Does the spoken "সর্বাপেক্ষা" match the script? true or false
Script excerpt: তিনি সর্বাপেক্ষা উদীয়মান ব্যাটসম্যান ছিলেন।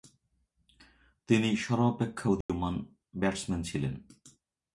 true